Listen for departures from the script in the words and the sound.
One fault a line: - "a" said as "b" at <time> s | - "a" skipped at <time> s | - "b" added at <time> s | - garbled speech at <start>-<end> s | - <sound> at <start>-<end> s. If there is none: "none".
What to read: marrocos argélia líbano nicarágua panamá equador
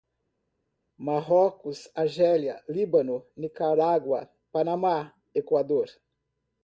none